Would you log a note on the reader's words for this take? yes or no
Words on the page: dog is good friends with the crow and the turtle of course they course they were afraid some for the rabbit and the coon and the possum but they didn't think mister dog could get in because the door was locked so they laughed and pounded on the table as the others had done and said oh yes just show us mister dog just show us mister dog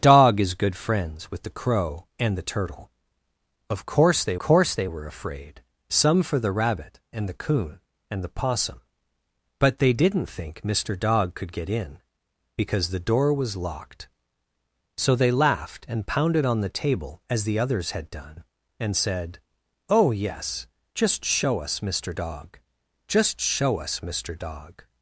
no